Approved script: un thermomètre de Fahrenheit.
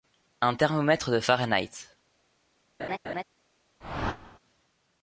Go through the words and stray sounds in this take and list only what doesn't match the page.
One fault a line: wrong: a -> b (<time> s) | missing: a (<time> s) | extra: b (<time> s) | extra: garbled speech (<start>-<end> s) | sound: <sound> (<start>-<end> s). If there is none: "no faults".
sound: laugh (2.8-3.2 s)
sound: whoosh (3.8-4.4 s)